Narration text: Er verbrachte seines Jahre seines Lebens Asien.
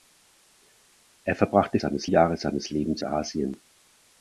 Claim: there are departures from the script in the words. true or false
false